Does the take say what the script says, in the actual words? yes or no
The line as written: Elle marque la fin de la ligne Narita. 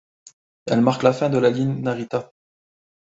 yes